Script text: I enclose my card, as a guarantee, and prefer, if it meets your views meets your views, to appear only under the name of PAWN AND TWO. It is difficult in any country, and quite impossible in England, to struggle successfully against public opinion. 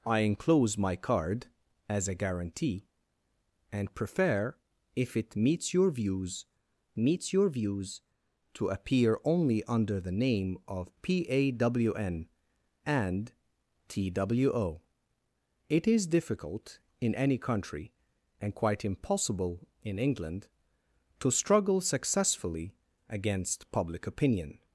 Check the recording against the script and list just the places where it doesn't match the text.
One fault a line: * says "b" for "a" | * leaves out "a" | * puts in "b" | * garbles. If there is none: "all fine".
all fine